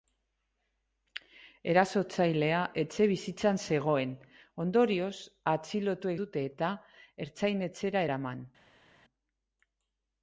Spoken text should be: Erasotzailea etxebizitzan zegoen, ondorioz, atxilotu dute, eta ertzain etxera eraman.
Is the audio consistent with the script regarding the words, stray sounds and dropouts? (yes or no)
yes